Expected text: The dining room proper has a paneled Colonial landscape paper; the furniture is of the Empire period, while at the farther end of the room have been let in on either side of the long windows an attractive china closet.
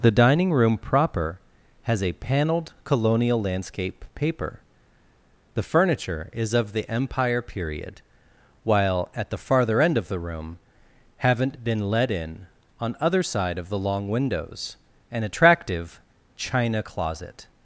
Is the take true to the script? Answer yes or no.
no